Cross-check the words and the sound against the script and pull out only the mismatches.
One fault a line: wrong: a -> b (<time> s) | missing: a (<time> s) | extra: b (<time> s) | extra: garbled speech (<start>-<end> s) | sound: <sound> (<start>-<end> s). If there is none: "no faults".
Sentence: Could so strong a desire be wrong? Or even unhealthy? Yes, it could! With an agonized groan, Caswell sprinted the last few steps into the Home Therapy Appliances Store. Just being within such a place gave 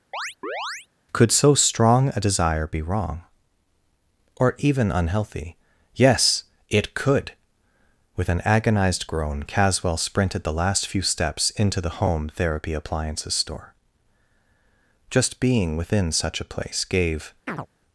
sound: chirp (0.1-0.9 s)
sound: chirp (17.5-17.7 s)